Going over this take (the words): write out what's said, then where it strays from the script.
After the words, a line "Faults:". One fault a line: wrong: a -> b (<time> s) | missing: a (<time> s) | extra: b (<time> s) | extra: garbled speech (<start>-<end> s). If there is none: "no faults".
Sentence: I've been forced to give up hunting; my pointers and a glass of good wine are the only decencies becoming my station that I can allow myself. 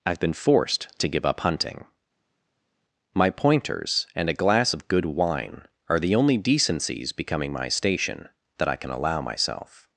I've been forced to give up hunting; my pointers and a glass of good wine are the only decencies becoming my station that I can allow myself.
Faults:
no faults